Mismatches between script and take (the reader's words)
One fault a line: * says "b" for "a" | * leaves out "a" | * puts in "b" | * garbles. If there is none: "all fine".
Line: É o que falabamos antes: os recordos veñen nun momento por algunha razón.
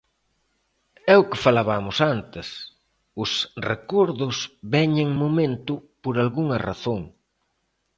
* leaves out "nun"